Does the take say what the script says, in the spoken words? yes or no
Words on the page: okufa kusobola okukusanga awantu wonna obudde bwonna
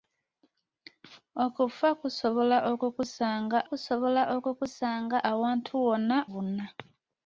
no